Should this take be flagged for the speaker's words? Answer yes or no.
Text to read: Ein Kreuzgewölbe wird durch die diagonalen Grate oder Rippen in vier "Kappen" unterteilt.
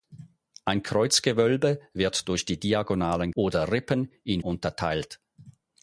yes